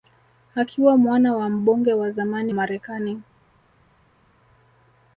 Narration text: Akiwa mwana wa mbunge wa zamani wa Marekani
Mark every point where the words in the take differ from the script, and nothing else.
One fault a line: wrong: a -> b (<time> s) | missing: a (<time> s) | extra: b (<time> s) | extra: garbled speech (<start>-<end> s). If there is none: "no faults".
missing: wa (2.5 s)